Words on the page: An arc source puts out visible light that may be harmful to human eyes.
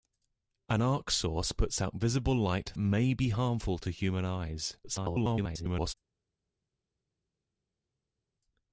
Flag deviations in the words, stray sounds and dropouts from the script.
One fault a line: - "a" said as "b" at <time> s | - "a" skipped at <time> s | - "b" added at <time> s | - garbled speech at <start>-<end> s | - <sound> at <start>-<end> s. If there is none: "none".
- "that" skipped at 2.7 s
- garbled speech at 4.8-5.9 s